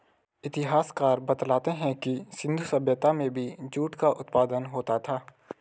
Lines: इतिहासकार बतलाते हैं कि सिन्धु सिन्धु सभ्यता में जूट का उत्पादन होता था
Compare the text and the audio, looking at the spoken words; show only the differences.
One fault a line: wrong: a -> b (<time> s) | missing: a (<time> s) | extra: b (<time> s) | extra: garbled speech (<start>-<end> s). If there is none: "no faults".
missing: सिन्धु (2.6 s)
extra: भी (3.3 s)